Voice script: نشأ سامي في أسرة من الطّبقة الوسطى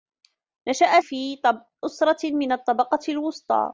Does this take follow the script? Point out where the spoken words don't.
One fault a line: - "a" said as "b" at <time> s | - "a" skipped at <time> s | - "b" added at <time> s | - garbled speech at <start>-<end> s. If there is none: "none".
- "سامي" skipped at 1.0 s